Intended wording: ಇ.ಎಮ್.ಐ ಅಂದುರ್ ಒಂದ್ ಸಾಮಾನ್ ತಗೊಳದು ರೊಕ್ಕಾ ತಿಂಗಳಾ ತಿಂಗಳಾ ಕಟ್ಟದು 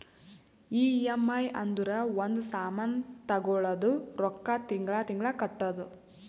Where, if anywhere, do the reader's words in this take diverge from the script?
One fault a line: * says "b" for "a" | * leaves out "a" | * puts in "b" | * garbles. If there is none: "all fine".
all fine